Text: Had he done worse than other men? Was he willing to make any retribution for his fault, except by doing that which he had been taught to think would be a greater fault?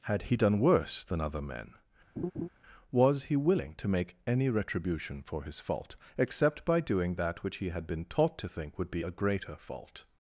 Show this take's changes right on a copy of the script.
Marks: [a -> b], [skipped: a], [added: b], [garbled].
Had he done worse than other men? Was he willing to make any retribution for his fault, except by doing that which he had been taught to think would be a greater fault?